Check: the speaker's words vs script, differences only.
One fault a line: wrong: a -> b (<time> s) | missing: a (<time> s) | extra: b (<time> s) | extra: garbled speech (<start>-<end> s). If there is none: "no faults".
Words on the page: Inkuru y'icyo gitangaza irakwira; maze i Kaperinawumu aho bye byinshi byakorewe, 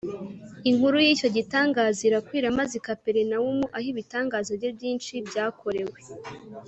extra: ibitangaza (3.9 s)